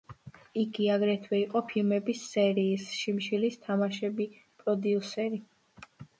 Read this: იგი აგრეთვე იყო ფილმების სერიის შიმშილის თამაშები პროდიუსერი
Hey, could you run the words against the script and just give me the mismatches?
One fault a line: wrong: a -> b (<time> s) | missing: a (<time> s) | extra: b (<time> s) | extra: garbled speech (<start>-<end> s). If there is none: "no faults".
no faults